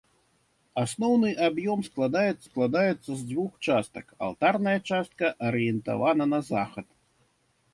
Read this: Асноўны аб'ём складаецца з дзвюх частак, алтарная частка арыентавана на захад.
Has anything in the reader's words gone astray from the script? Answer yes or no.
yes